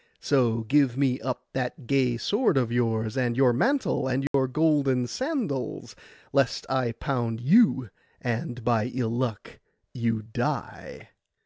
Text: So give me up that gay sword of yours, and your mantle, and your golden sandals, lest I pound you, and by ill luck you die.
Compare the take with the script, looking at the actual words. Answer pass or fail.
pass